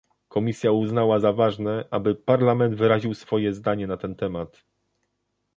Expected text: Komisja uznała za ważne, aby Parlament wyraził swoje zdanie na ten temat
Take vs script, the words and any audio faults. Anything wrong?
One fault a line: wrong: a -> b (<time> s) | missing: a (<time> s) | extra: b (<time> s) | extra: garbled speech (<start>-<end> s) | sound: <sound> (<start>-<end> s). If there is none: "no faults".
no faults